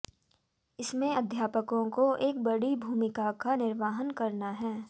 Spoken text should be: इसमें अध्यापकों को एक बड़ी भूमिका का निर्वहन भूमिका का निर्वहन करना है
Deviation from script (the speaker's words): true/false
true